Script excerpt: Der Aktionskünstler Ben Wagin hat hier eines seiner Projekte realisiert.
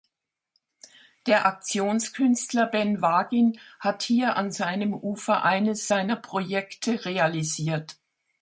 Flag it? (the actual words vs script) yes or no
yes